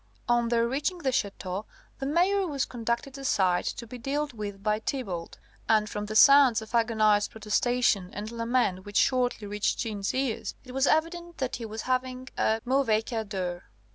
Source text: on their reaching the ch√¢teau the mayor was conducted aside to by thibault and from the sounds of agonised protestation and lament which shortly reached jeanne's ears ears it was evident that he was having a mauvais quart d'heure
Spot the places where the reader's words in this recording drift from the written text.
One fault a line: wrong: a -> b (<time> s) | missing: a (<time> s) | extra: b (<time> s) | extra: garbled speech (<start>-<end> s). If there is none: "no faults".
extra: be dealt with (3.9 s)
missing: ears (10.6 s)